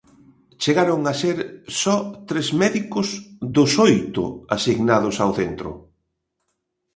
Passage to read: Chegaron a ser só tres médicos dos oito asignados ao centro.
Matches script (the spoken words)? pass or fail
pass